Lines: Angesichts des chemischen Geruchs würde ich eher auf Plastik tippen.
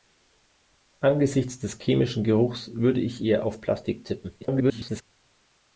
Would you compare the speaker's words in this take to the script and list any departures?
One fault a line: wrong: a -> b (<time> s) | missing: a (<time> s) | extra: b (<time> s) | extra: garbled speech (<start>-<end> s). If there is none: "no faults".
extra: garbled speech (4.4-5.0 s)